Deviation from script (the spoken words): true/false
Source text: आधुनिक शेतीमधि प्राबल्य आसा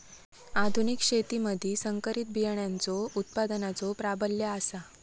true